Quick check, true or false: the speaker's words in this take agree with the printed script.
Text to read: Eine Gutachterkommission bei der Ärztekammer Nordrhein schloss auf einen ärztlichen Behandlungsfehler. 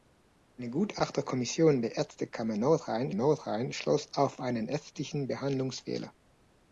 false